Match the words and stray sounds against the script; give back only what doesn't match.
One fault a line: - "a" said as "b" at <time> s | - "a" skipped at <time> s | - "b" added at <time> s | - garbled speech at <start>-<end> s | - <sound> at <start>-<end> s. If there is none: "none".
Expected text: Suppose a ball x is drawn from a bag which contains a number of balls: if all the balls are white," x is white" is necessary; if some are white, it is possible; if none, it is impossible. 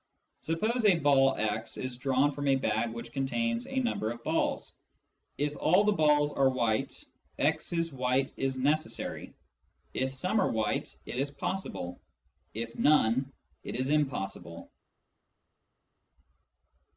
none